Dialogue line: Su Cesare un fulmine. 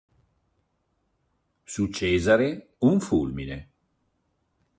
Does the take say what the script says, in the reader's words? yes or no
yes